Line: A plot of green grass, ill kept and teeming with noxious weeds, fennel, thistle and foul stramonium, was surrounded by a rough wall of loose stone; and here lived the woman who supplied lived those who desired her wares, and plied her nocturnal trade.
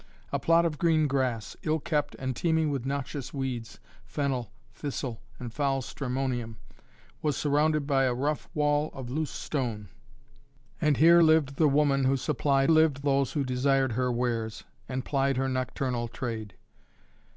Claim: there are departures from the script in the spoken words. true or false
false